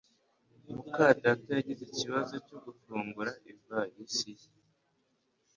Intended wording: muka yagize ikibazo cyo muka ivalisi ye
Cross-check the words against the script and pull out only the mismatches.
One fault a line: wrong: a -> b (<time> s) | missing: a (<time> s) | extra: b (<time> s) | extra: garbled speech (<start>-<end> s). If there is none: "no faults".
extra: data (1.2 s)
wrong: muka -> gufungura (2.6 s)